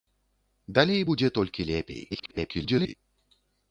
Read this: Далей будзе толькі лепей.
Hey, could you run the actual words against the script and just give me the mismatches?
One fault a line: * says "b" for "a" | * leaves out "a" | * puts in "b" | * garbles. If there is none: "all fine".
* garbles